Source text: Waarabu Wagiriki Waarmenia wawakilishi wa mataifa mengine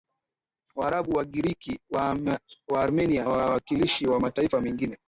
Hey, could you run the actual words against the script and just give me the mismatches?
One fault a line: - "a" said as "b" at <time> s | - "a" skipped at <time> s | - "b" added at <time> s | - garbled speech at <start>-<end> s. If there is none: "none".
none